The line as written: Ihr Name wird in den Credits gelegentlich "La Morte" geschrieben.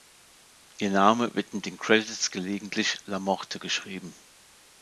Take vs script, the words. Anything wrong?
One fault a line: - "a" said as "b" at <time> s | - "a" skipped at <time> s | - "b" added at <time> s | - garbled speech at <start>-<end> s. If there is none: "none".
none